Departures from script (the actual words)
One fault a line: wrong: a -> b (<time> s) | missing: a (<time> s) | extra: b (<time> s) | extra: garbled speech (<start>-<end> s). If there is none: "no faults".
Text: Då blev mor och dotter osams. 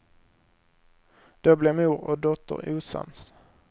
no faults